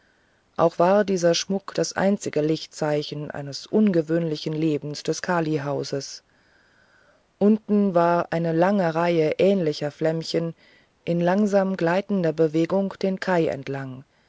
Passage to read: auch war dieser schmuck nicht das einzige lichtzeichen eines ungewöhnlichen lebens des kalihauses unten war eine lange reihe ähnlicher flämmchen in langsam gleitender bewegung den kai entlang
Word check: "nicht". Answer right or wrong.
wrong